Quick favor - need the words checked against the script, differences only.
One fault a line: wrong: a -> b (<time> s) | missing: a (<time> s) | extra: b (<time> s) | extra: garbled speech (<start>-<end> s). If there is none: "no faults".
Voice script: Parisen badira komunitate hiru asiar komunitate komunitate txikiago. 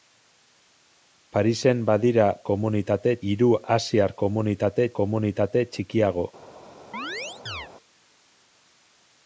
no faults